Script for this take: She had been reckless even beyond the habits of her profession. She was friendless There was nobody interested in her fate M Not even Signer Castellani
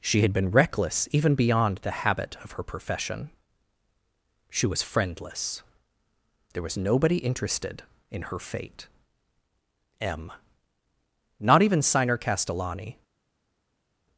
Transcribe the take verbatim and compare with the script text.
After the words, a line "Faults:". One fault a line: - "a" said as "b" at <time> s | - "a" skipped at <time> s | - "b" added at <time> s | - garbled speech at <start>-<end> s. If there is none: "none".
She had been reckless even beyond the habit of her profession. She was friendless There was nobody interested in her fate M Not even Signer Castellani
Faults:
- "habits" said as "habit" at 1.9 s